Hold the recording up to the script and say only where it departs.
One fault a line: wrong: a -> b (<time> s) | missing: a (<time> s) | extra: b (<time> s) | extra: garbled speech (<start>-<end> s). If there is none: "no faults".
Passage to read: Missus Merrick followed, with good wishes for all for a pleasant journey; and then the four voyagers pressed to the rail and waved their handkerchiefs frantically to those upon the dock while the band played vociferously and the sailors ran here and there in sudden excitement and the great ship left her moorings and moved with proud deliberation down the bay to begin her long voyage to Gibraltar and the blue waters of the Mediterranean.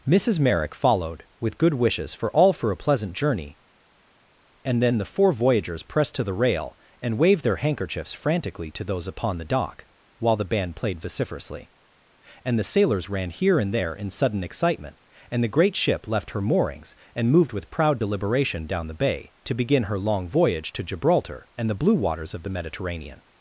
no faults